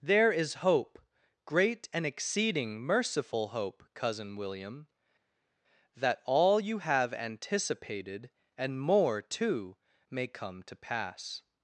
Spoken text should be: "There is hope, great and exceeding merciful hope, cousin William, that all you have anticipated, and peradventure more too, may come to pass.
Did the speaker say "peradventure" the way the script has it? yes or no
no